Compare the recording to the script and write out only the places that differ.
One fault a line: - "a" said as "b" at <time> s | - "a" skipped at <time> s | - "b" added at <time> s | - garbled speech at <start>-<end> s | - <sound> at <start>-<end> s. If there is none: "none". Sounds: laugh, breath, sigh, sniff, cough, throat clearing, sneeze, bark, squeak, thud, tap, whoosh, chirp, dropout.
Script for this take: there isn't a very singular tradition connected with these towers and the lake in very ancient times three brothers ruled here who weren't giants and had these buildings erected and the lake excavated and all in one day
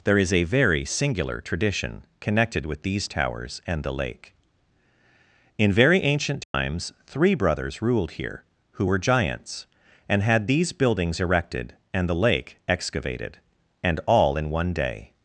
- "isn't" said as "is" at 0.2 s
- dropout at 6.4-6.5 s
- "weren't" said as "were" at 8.8 s